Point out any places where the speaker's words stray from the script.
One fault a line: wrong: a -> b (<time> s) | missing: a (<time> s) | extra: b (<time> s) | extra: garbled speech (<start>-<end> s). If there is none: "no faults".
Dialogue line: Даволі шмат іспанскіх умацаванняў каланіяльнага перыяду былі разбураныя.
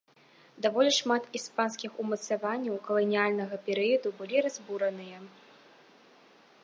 no faults